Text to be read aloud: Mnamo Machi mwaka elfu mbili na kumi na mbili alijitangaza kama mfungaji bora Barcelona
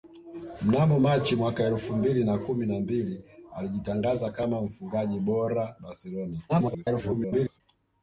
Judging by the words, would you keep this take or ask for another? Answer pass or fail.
fail